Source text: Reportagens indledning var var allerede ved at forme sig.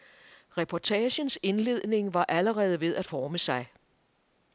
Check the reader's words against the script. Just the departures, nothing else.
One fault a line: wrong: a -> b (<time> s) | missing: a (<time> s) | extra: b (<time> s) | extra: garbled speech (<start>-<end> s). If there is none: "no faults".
missing: var (2.2 s)